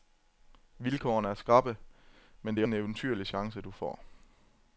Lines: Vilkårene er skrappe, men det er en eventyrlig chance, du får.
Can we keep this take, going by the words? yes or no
yes